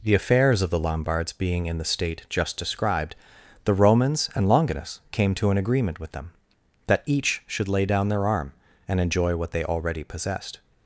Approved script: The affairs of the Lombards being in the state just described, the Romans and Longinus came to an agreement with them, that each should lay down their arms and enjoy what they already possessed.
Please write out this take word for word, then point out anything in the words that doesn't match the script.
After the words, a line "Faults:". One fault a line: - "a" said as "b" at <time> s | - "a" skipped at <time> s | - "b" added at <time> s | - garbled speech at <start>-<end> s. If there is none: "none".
The affairs of the Lombards being in the state just described, the Romans and Longinus came to an agreement with them, that each should lay down their arm and enjoy what they already possessed.
Faults:
- "arms" said as "arm" at 8.2 s